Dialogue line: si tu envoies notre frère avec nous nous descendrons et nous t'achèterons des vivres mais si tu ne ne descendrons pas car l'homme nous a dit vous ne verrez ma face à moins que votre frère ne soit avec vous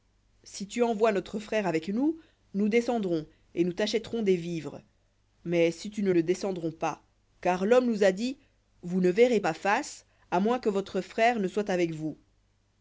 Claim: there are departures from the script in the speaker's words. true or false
false